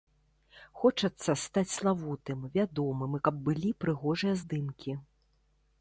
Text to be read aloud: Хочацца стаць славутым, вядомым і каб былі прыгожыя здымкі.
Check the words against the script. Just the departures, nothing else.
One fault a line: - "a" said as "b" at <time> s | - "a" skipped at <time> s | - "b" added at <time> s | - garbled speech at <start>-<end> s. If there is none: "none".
none